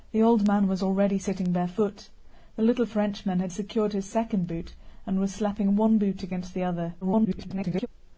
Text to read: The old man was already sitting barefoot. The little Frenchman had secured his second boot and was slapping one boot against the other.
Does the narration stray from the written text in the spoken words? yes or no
yes